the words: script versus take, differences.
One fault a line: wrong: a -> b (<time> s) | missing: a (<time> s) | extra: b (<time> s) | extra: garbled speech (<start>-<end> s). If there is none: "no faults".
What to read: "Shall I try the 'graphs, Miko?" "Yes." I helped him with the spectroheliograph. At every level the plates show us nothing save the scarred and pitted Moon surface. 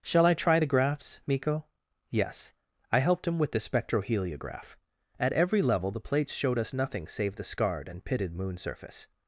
wrong: show -> showed (6.3 s)